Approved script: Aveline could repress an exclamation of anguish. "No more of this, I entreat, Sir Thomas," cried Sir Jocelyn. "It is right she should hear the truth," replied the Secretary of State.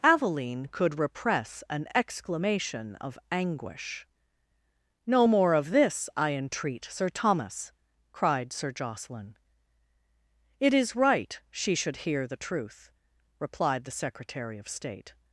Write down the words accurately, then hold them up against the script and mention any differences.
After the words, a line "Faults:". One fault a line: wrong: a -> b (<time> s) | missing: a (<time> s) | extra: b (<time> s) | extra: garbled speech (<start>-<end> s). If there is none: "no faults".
Aveline could repress an exclamation of anguish. "No more of this, I entreat, Sir Thomas," cried Sir Jocelyn. "It is right she should hear the truth," replied the Secretary of State.
Faults:
no faults